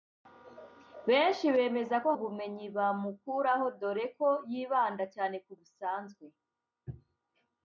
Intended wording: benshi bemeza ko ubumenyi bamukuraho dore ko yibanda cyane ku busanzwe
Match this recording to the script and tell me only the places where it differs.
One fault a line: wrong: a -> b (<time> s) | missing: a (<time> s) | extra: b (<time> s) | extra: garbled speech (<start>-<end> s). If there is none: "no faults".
no faults